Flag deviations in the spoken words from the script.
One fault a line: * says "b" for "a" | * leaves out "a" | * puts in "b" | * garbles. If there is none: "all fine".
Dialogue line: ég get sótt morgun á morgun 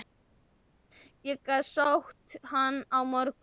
* says "hann" for "morgun"